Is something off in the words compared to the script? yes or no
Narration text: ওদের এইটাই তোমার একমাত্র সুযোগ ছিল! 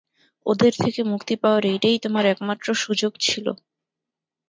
yes